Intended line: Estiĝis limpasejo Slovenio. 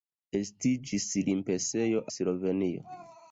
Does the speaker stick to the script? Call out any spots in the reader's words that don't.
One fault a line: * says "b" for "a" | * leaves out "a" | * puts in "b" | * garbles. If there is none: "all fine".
all fine